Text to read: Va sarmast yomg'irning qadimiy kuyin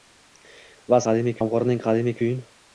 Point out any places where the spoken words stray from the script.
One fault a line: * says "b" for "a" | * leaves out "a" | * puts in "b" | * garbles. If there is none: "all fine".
* says "qadimiy" for "sarmast"